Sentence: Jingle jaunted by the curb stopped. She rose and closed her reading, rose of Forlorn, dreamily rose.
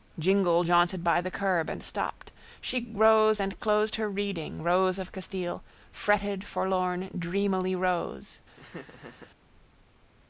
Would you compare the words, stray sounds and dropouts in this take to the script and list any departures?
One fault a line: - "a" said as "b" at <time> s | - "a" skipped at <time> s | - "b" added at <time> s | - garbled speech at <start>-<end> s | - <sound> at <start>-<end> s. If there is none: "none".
- "and" added at 1.7 s
- "Castile fretted" added at 5.1 s
- laugh at 8.5-9.3 s